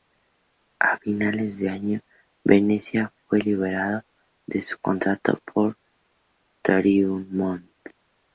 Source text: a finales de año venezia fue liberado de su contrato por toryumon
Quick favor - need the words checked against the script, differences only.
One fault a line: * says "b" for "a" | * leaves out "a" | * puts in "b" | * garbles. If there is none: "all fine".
all fine